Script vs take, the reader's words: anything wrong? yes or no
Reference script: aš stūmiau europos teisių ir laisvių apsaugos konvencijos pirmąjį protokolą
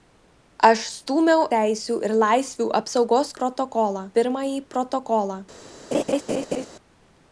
yes